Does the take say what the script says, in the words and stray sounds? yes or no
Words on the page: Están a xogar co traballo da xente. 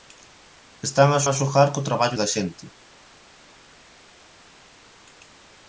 no